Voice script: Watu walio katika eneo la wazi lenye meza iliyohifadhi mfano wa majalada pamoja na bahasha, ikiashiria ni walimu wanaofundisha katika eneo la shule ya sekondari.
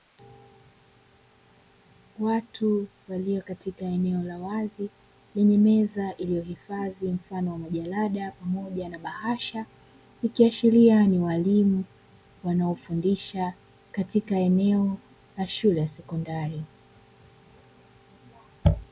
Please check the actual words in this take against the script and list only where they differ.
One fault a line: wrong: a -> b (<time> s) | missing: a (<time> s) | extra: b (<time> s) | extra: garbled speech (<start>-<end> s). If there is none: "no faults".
no faults